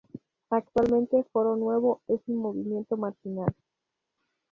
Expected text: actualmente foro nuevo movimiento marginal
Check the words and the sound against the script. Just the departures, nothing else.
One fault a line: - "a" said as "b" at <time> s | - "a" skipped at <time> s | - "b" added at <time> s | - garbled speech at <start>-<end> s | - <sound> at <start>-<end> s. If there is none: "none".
- "es un" added at 2.1 s